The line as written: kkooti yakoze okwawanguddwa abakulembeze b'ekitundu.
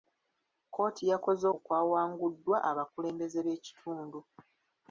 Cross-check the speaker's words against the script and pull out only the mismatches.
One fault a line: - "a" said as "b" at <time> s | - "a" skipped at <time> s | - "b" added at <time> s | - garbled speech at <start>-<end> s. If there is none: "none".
none